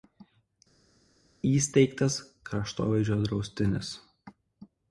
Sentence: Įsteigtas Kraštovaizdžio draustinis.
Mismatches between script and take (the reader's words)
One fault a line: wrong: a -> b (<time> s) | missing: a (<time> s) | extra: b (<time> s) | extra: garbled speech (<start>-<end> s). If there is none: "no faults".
no faults